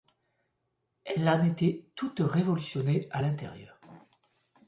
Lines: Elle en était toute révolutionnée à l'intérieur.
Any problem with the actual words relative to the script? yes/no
no